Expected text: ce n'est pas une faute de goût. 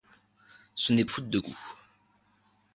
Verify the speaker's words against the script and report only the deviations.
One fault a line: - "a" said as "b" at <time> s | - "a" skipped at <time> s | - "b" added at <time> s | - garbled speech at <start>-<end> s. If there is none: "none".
- "pas une" skipped at 1.1 s